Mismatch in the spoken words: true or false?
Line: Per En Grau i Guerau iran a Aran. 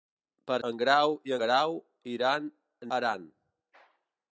false